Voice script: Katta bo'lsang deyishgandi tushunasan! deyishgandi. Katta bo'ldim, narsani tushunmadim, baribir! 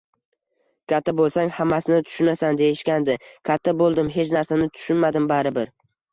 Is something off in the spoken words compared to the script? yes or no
yes